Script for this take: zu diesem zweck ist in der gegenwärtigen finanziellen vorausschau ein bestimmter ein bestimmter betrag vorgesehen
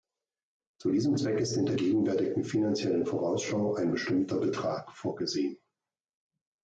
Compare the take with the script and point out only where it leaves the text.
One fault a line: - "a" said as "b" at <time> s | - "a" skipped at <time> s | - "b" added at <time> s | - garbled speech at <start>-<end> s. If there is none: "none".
- "ein bestimmter" skipped at 4.4 s